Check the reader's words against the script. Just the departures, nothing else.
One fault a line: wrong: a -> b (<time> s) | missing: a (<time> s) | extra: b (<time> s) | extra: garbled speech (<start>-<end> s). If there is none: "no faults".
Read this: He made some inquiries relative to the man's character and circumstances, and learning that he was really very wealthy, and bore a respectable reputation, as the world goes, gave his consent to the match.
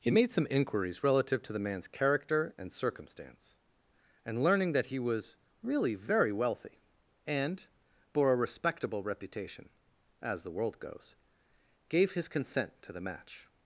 wrong: circumstances -> circumstance (2.7 s)